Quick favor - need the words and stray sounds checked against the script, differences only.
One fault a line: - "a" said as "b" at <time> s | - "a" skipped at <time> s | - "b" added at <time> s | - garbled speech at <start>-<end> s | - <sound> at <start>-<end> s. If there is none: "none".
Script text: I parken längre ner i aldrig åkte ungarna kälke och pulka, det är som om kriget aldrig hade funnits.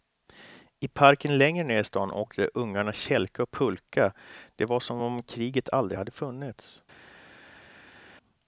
- "aldrig" said as "stan" at 1.8 s
- "är" said as "var" at 4.6 s